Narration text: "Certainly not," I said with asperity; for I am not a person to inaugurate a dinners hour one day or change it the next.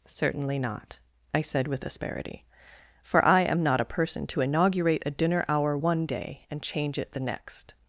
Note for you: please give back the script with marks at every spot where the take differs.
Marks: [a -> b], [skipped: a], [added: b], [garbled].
"Certainly not," I said with asperity; for I am not a person to inaugurate a [dinners -> dinner] hour one day [or -> and] change it the next.